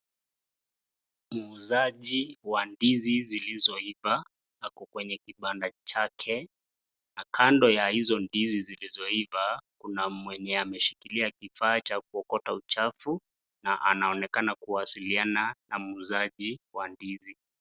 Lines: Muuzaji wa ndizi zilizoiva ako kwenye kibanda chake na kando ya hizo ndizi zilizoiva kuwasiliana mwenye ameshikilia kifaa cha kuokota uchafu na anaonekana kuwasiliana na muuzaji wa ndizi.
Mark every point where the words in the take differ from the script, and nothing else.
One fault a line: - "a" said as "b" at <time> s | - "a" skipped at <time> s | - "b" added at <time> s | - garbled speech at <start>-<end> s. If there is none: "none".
- "kuwasiliana" said as "kuna" at 9.8 s